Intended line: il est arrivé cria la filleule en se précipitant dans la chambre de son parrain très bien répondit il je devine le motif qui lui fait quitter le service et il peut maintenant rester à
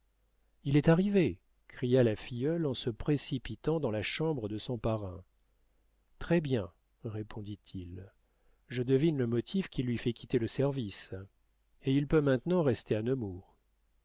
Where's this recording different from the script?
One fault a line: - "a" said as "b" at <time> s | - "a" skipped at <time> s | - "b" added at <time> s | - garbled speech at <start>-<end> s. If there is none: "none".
none